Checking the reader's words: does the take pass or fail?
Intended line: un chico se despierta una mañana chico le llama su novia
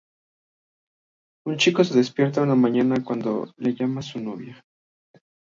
fail